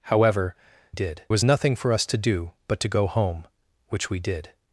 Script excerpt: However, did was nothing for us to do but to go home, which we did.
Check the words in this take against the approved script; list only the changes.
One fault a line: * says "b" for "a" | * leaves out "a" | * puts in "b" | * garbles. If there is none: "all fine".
all fine